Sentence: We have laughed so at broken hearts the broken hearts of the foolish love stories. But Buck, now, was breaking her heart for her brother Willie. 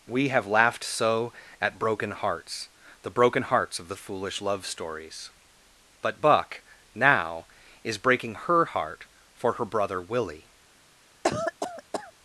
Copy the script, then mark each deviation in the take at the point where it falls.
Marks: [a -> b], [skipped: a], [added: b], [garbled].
We have laughed so at broken hearts the broken hearts of the foolish love stories. But Buck, now, [was -> is] breaking her heart for her brother Willie.